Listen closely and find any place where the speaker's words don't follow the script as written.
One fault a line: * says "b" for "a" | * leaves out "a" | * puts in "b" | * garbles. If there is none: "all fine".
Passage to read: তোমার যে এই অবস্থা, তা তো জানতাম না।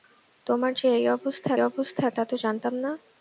* puts in "অবস্থা"